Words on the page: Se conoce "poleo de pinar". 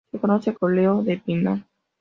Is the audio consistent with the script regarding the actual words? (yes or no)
yes